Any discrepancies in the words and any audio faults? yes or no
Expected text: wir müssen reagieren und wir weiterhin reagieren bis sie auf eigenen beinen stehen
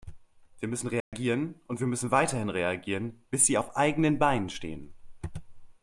yes